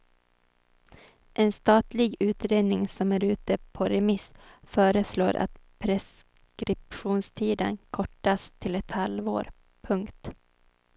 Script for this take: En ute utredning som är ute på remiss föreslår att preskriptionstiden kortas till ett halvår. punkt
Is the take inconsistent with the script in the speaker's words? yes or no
yes